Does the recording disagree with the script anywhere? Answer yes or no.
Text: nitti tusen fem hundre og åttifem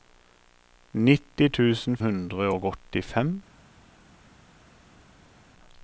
yes